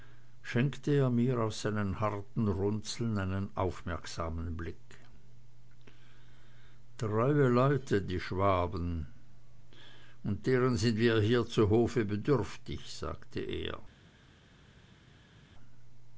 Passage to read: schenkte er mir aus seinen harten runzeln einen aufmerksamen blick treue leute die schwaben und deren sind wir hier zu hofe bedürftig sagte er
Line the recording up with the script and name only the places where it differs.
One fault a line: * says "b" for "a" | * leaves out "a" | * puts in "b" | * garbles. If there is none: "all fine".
all fine